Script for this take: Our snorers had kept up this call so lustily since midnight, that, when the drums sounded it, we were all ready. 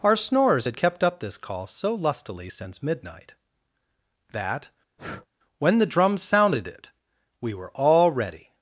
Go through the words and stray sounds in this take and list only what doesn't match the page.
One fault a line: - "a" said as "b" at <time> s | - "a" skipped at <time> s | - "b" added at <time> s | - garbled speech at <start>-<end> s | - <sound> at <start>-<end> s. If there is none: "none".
- breath at 5.0-5.3 s